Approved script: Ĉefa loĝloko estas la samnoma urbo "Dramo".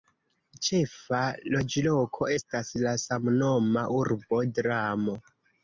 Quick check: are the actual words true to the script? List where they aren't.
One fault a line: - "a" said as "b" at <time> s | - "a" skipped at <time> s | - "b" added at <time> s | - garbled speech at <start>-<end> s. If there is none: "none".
none